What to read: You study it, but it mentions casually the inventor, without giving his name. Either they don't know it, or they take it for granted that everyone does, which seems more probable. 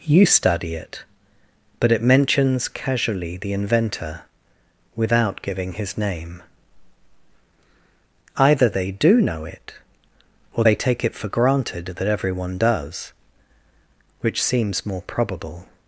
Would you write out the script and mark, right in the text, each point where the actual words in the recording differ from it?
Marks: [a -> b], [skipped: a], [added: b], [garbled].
You study it, but it mentions casually the inventor, without giving his name. Either they [don't -> do] know it, or they take it for granted that everyone does, which seems more probable.